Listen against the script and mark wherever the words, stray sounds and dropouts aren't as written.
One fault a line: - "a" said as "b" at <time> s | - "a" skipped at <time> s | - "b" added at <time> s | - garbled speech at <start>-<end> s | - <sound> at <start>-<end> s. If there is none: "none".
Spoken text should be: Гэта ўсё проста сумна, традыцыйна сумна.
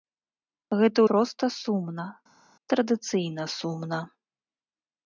- "ўсё" skipped at 1.0 s